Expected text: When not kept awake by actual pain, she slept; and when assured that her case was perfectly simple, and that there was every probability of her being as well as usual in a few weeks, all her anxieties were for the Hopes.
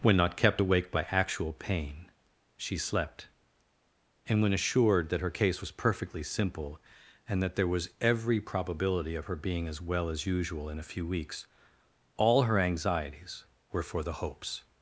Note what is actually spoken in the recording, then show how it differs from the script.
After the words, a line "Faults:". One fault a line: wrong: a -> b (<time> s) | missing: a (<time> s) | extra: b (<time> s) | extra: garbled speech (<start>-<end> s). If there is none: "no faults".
When not kept awake by actual pain, she slept; and when assured that her case was perfectly simple, and that there was every probability of her being as well as usual in a few weeks, all her anxieties were for the Hopes.
Faults:
no faults